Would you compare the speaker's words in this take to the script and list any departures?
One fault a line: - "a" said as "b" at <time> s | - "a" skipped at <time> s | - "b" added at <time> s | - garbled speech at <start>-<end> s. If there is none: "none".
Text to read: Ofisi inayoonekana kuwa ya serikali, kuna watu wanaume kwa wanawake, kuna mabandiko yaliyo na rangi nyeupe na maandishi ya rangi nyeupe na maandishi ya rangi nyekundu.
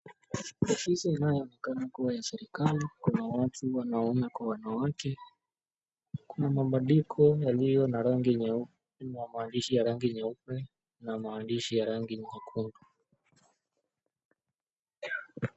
none